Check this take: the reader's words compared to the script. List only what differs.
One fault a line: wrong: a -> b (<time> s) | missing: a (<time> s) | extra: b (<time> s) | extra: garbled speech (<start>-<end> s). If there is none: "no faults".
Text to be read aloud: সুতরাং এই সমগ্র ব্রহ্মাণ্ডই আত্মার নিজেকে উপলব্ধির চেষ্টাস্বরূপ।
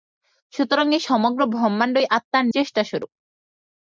missing: নিজেকে উপলব্ধির (2.5 s)